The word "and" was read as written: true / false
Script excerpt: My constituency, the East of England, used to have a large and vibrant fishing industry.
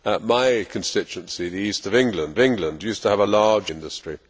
false